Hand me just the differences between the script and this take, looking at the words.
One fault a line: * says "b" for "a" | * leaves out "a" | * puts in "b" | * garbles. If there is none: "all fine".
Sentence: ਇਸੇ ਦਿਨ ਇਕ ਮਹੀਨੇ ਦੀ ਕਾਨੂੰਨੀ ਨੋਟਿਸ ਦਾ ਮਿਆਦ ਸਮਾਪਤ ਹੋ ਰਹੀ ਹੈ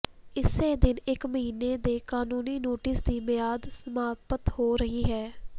* says "ਦੇ" for "ਦੀ"
* says "ਦੀ" for "ਦਾ"